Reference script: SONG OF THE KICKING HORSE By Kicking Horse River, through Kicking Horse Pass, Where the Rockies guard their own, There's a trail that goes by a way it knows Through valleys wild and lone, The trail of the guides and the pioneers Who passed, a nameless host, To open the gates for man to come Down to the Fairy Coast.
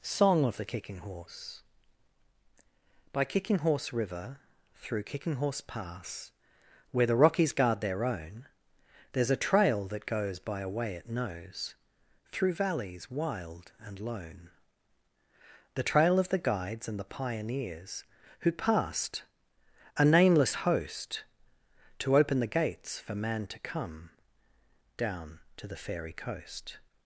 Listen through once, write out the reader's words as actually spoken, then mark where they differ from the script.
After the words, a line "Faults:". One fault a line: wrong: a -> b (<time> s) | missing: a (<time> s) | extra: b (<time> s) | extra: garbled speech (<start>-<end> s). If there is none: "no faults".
SONG OF THE KICKING HORSE By Kicking Horse River, through Kicking Horse Pass, Where the Rockies guard their own, There's a trail that goes by a way it knows Through valleys wild and lone, The trail of the guides and the pioneers Who passed, a nameless host, To open the gates for man to come Down to the Fairy Coast.
Faults:
no faults